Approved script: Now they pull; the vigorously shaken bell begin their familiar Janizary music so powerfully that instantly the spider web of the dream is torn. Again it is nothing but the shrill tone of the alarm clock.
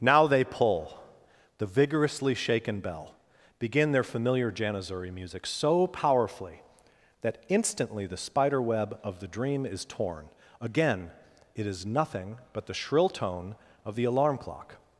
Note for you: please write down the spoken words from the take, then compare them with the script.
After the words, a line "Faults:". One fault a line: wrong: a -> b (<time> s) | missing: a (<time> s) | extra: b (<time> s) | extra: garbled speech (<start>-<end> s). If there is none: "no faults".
Now they pull; the vigorously shaken bell begin their familiar Janizary music so powerfully that instantly the spider web of the dream is torn. Again it is nothing but the shrill tone of the alarm clock.
Faults:
no faults